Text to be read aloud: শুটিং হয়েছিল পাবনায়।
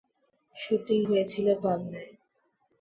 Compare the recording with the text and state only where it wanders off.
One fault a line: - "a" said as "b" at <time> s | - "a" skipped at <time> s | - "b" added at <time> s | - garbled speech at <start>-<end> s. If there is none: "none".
none